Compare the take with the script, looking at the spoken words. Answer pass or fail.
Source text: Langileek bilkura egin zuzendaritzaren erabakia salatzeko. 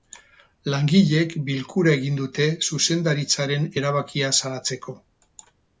fail